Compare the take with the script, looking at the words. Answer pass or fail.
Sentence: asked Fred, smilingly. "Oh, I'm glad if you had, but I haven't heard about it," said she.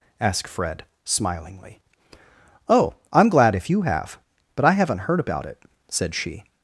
fail